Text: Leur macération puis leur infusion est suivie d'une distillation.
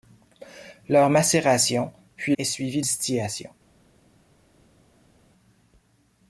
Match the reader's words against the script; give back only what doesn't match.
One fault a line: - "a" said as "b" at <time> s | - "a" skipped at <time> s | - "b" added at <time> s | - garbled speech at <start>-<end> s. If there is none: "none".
- "leur infusion" skipped at 2.3 s
- "d'une" skipped at 2.8 s